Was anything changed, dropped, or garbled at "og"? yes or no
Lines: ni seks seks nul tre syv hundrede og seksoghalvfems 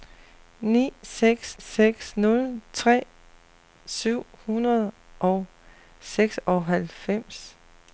no